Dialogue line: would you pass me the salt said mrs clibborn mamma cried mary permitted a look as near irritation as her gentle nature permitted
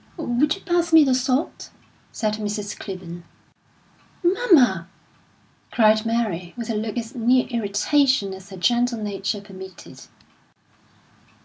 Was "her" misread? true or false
false